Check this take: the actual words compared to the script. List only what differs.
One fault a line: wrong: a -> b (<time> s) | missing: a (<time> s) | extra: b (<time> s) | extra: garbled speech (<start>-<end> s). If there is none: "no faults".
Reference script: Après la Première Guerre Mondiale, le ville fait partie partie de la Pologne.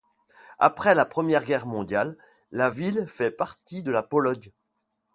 wrong: le -> la (2.5 s)
missing: partie (3.8 s)